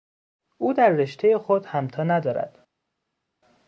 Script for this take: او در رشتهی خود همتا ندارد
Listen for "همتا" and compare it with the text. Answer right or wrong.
right